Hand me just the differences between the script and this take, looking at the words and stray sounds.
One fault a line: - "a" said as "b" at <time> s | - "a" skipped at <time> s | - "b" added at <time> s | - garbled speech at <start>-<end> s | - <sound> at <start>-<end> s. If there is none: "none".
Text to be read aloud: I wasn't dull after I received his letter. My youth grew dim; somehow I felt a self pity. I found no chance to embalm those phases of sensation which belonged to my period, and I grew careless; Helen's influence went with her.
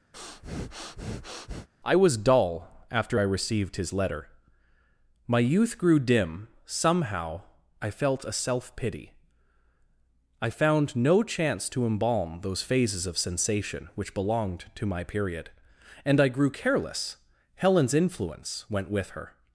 - breath at 0.1-1.7 s
- "wasn't" said as "was" at 2.0 s